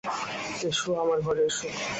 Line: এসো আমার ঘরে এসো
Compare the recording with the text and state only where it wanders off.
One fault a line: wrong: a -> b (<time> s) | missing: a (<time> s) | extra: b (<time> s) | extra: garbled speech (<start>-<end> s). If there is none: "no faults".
no faults